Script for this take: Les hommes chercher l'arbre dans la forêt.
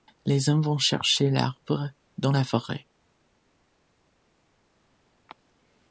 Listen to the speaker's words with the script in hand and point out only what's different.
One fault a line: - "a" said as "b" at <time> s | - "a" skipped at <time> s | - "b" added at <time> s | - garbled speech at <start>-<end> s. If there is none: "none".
- "vont" added at 0.6 s